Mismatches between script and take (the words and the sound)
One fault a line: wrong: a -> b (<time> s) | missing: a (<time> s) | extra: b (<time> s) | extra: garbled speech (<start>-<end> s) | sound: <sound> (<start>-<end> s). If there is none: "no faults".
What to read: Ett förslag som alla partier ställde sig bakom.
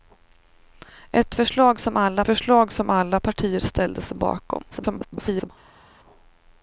extra: förslag som alla (2.2 s)
extra: garbled speech (4.7-5.5 s)